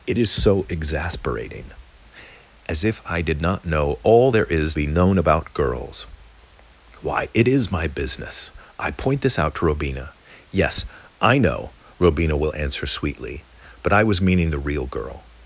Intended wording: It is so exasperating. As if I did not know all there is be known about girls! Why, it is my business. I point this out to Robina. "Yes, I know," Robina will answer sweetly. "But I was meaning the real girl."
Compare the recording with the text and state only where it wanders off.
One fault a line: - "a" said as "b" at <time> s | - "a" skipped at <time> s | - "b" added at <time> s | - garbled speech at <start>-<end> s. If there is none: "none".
none